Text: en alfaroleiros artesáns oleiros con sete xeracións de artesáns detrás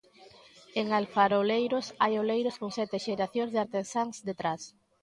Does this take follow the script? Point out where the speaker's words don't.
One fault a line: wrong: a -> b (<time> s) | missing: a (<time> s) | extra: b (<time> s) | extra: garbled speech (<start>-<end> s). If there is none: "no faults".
wrong: artesáns -> hai (2.0 s)